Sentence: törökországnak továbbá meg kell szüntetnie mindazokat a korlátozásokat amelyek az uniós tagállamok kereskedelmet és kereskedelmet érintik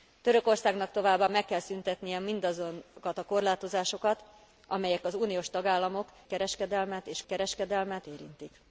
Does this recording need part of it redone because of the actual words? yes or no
no